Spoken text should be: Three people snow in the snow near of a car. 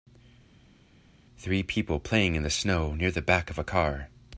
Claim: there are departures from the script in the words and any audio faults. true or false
true